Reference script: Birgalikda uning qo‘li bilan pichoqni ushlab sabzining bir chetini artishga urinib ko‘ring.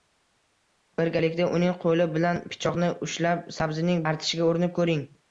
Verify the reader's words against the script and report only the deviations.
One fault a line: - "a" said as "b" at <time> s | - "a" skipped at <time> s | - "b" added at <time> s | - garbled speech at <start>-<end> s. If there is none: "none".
- "bir chetini" skipped at 4.0 s